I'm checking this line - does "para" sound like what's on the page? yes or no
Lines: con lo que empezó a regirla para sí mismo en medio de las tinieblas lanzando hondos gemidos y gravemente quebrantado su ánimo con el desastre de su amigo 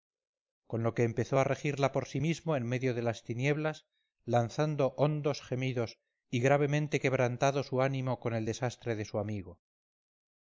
no